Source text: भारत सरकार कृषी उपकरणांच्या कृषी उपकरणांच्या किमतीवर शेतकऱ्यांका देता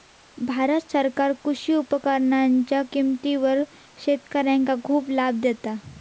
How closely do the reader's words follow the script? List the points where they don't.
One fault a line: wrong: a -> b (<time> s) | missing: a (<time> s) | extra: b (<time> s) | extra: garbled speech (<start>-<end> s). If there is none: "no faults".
wrong: कृषी उपकरणांच्या किमतीवर शेतकऱ्यांका -> किमतीवर शेतकऱ्यांका खूप लाभ (2.9 s)